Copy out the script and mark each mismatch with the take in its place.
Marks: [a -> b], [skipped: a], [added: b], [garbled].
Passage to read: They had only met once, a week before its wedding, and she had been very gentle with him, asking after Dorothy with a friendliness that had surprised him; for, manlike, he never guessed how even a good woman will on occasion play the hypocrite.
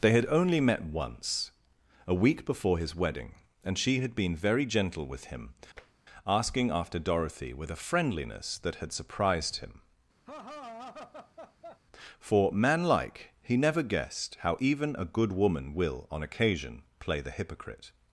They had only met once, a week before [its -> his] wedding, and she had been very gentle with him, asking after Dorothy with a friendliness that had surprised him; for, manlike, he never guessed how even a good woman will on occasion play the hypocrite.